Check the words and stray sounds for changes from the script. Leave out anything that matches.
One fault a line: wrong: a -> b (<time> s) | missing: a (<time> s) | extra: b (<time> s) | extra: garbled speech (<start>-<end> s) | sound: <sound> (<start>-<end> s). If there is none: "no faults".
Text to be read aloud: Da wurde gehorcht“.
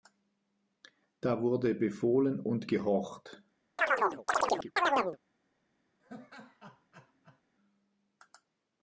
extra: befohlen und (1.8 s)
sound: chirp (3.8-5.2 s)
sound: laugh (6.0-7.4 s)